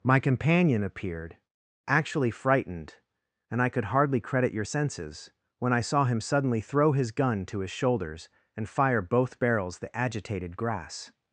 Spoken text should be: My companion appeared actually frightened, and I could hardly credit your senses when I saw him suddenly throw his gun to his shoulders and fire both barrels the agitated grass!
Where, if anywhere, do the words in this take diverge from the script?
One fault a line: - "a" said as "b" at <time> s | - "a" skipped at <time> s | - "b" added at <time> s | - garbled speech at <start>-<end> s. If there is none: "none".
none